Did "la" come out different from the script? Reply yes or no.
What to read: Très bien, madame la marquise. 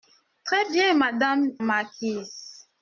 yes